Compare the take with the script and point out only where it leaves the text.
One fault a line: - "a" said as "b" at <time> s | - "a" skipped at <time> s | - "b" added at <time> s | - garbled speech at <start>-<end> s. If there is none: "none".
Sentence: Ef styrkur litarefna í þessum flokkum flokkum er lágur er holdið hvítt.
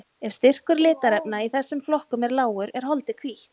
- "flokkum" skipped at 2.3 s